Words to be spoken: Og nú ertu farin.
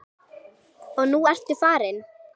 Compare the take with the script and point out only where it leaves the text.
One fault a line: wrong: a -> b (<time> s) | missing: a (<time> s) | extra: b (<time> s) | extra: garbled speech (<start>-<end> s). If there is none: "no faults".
no faults